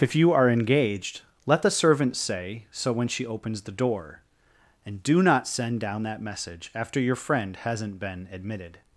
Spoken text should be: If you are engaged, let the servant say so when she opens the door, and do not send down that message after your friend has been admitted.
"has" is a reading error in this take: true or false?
true